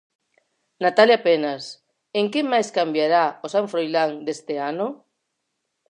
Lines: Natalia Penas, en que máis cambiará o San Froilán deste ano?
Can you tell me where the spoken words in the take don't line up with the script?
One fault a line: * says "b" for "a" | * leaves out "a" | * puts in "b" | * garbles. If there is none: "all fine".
all fine